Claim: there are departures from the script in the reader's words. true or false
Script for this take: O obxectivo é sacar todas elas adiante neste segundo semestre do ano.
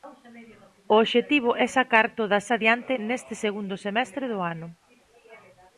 true